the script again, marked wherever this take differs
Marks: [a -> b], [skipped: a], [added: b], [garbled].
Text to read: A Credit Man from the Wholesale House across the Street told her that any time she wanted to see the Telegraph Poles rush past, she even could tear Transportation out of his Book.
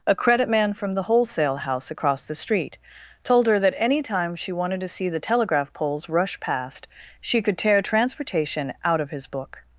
A Credit Man from the Wholesale House across the Street told her that any time she wanted to see the Telegraph Poles rush past, she [skipped: even] could tear Transportation out of his Book.